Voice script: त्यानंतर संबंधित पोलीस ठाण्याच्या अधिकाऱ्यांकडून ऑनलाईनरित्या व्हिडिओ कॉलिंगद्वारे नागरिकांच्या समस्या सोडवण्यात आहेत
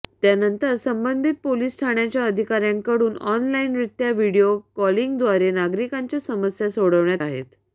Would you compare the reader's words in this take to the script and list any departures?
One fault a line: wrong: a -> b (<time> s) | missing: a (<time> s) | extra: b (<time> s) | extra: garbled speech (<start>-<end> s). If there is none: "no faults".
no faults